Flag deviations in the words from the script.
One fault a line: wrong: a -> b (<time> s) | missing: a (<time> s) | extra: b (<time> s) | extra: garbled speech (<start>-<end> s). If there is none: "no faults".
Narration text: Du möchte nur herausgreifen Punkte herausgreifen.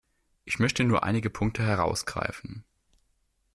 wrong: Du -> Ich (0.5 s)
wrong: herausgreifen -> einige (1.0 s)